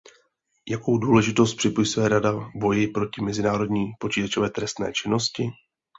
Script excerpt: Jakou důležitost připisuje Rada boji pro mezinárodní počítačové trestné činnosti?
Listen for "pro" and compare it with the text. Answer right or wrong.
wrong